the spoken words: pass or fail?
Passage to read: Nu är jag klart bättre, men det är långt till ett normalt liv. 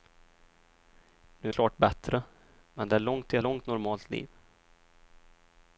fail